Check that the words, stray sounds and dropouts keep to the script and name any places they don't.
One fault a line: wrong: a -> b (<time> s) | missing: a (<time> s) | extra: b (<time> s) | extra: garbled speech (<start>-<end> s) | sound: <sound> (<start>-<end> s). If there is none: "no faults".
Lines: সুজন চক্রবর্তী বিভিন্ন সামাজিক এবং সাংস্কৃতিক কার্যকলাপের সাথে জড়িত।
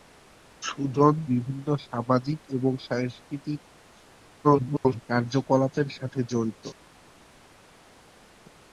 missing: চক্রবর্তী (1.1 s)
extra: garbled speech (4.4-5.0 s)